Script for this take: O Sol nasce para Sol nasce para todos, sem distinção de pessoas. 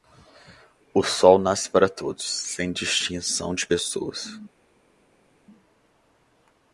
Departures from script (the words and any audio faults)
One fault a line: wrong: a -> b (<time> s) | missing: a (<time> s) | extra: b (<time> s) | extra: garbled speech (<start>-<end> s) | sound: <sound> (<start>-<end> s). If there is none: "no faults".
missing: Sol nasce para (1.9 s)